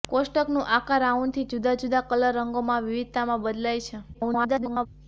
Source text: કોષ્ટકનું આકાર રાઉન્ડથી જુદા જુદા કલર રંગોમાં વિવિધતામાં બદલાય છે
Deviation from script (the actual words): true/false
true